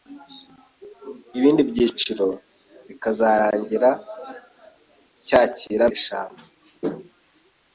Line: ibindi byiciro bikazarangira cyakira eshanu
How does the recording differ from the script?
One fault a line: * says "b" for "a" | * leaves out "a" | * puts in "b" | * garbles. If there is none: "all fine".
all fine